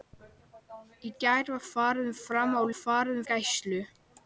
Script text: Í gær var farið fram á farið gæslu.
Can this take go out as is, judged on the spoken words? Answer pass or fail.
pass